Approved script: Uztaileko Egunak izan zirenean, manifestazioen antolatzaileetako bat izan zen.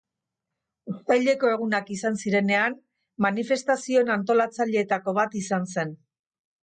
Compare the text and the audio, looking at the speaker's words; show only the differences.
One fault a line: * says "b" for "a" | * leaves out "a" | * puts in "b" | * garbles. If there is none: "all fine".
all fine